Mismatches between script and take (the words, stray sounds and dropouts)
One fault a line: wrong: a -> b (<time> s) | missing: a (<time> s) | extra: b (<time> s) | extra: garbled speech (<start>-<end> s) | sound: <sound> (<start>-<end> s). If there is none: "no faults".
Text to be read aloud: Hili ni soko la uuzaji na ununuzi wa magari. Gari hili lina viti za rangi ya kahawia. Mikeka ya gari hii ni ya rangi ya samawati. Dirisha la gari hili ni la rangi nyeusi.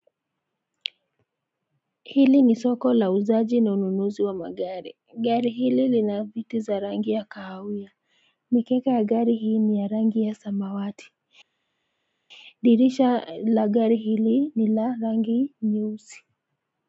no faults